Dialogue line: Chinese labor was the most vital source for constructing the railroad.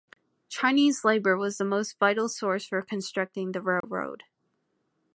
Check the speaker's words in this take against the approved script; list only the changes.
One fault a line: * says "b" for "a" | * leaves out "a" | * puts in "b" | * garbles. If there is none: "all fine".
all fine